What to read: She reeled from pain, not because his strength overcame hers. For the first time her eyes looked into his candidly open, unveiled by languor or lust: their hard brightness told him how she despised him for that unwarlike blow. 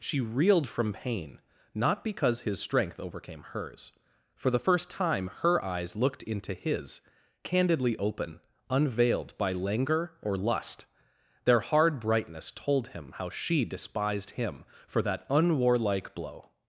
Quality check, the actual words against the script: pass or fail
pass